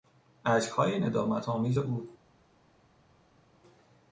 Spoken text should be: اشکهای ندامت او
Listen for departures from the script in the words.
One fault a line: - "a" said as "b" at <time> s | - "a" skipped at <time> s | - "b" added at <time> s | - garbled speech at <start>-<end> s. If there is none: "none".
- "آمیز" added at 1.5 s